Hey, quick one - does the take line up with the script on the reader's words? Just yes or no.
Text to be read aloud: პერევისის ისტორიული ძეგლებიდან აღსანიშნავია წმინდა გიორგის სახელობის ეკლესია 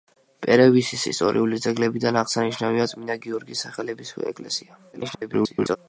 no